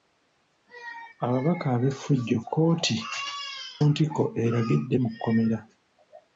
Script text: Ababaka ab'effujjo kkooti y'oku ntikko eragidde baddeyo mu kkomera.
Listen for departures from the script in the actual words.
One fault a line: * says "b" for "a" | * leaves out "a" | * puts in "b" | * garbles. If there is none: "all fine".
* leaves out "y'oku"
* leaves out "baddeyo"